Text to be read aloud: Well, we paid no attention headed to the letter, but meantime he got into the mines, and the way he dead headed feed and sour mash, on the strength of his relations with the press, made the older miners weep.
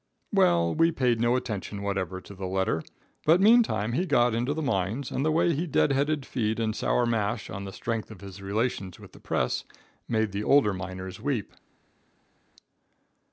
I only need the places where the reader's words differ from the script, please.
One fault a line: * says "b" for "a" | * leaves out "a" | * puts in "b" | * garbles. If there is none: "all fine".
* says "whatever" for "headed"